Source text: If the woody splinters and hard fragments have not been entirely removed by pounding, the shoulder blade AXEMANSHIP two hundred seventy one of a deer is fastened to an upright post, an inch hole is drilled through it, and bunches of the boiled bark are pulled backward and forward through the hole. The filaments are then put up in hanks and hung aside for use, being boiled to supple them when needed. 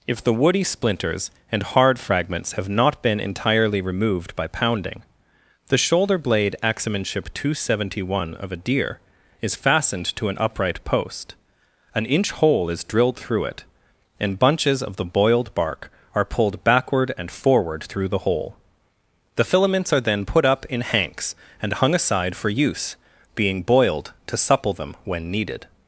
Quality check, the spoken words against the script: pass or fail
pass